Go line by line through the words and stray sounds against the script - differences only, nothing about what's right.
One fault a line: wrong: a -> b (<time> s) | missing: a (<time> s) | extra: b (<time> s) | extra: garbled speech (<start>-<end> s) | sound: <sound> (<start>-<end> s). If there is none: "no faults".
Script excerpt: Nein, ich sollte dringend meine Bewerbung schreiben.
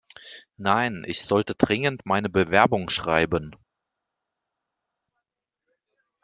no faults